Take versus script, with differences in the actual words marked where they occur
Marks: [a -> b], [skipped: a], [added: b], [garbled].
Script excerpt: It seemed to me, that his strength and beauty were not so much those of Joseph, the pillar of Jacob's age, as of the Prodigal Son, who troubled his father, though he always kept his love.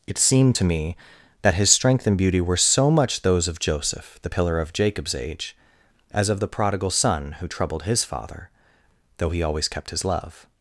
It seemed to me, that his strength and beauty were [skipped: not] so much those of Joseph, the pillar of Jacob's age, as of the Prodigal Son, who troubled his father, though he always kept his love.